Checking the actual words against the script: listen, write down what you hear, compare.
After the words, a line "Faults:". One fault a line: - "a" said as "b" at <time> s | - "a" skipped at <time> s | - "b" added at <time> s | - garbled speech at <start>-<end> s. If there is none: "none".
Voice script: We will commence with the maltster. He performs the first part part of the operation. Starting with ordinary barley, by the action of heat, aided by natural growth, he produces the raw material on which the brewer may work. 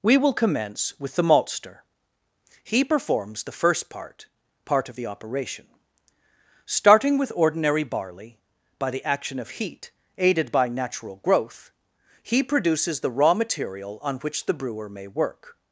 We will commence with the maltster. He performs the first part part of the operation. Starting with ordinary barley, by the action of heat, aided by natural growth, he produces the raw material on which the brewer may work.
Faults:
none